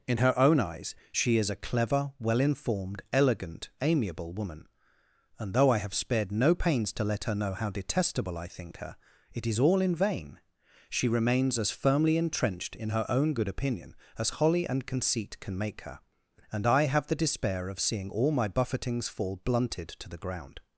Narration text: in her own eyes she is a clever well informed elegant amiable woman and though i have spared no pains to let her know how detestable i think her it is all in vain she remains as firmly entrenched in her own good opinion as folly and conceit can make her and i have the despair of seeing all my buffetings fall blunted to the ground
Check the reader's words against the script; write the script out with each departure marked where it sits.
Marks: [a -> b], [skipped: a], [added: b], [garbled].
in her own eyes she is a clever well informed elegant amiable woman and though i have spared no pains to let her know how detestable i think her it is all in vain she remains as firmly entrenched in her own good opinion as [folly -> holly] and conceit can make her and i have the despair of seeing all my buffetings fall blunted to the ground